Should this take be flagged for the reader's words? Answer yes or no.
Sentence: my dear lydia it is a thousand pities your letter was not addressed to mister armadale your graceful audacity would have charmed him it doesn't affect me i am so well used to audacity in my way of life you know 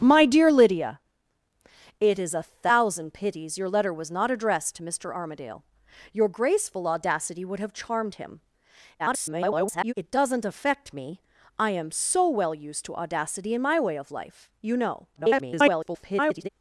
yes